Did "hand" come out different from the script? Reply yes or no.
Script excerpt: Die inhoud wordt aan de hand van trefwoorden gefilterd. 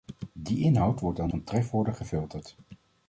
yes